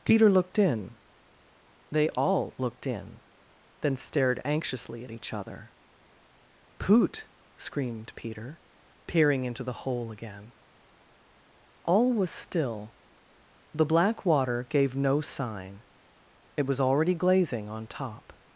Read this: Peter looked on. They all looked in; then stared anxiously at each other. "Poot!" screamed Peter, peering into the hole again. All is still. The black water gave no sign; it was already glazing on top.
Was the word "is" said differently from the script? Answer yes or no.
yes